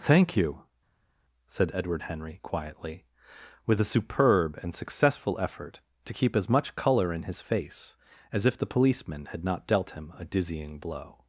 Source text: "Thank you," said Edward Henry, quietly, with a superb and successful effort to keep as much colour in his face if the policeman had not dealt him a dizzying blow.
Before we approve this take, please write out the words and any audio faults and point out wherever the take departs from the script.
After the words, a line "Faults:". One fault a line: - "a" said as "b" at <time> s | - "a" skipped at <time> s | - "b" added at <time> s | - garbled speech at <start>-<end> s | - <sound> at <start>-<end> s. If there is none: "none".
"Thank you," said Edward Henry, quietly, with a superb and successful effort to keep as much colour in his face as if the policeman had not dealt him a dizzying blow.
Faults:
- "as" added at 8.3 s